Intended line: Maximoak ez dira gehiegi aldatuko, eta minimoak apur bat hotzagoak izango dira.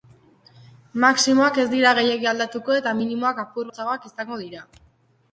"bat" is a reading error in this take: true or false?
true